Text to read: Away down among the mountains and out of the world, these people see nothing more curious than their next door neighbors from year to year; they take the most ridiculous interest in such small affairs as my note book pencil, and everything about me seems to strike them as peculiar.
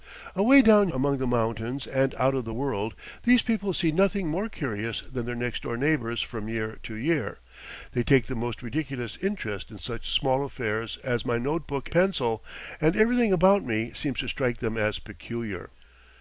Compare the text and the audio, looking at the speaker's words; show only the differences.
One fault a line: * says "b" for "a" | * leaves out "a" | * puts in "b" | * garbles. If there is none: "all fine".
all fine